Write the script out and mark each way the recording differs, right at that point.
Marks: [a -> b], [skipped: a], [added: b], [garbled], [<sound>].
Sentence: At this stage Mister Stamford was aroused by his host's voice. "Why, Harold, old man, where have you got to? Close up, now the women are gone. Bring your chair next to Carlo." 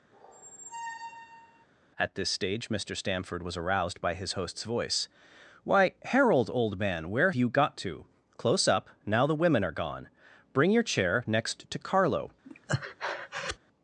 [squeak] At this stage Mister Stamford was aroused by his host's voice. "Why, Harold, old man, where [skipped: have] you got to? Close up, now the women are gone. Bring your chair next to Carlo." [breath]